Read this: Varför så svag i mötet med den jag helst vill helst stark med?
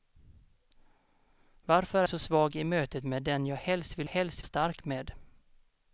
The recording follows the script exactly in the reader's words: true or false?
true